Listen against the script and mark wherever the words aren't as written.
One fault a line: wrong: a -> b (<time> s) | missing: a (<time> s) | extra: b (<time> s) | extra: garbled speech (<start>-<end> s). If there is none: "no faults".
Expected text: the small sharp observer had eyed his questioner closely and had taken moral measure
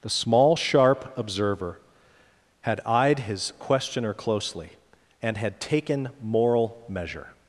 no faults